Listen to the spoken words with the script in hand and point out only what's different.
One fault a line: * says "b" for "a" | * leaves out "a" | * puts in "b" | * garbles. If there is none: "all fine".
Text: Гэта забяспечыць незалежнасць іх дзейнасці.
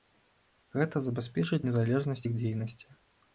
all fine